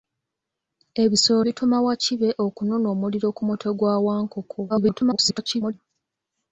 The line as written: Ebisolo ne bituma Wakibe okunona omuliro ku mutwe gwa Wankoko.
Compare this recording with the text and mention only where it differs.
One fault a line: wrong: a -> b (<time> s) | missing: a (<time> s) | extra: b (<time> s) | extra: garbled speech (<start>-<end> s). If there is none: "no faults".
missing: ne (1.4 s)
extra: garbled speech (4.7-5.7 s)